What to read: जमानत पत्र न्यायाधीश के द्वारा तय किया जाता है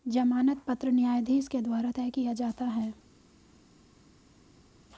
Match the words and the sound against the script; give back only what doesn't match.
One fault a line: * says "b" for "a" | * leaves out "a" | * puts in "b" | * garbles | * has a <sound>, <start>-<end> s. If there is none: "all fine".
all fine